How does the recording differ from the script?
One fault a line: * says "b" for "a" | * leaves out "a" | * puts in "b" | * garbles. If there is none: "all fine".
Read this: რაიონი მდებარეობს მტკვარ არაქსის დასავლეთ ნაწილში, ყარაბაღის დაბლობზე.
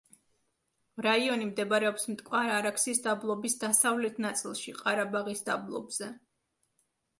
* puts in "დაბლობის"